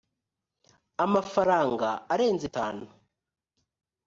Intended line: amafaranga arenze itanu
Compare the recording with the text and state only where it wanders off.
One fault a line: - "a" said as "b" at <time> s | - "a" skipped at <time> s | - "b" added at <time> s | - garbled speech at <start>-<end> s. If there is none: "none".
none